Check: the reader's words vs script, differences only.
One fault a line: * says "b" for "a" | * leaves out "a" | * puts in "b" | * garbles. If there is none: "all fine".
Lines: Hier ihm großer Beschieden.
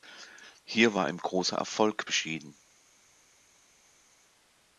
* puts in "war"
* puts in "Erfolg"